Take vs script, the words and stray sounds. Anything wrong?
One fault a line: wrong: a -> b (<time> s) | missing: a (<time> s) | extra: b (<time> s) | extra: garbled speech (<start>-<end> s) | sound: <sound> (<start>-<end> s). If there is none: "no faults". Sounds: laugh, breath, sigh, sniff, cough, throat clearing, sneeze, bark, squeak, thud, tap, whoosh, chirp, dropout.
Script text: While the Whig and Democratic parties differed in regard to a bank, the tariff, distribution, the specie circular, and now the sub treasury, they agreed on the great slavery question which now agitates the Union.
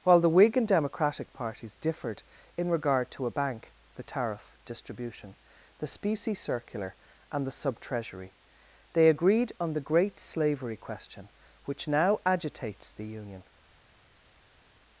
missing: now (7.4 s)